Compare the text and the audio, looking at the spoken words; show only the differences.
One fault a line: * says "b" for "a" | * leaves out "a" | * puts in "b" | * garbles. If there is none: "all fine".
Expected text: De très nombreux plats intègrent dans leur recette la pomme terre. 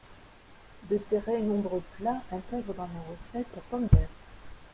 all fine